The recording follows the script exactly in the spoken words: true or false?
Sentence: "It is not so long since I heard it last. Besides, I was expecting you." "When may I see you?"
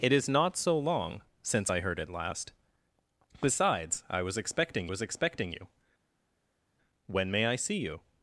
false